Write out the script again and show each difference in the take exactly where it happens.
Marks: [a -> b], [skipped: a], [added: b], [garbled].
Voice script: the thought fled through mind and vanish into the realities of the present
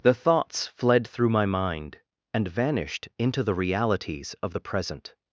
the [thought -> thoughts] fled through [added: my] mind and [vanish -> vanished] into the realities of the present